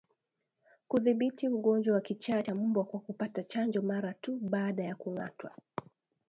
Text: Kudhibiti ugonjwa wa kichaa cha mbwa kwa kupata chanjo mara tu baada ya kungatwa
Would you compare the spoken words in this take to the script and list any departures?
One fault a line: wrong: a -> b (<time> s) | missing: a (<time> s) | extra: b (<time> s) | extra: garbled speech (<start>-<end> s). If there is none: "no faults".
no faults